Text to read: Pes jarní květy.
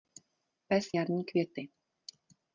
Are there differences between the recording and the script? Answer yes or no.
no